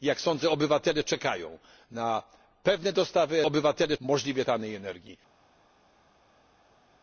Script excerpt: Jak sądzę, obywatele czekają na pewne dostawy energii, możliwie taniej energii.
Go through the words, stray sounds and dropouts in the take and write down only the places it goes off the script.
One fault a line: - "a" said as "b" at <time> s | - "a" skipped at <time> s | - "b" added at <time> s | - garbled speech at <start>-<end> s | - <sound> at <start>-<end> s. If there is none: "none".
- "energii" said as "obywatele" at 3.4 s